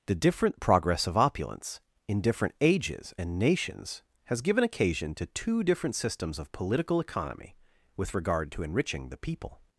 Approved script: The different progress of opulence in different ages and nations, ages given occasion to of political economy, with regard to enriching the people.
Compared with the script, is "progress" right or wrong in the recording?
right